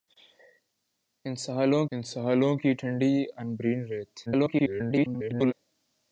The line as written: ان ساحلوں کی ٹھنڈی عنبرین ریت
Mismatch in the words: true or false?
true